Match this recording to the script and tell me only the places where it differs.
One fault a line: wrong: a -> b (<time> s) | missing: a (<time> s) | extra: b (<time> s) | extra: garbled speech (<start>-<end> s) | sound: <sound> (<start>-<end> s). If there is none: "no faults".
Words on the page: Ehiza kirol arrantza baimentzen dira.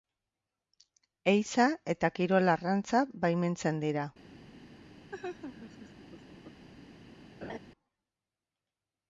extra: eta (1.9 s)
sound: laugh (5.1-6.7 s)
sound: laugh (7.4-7.6 s)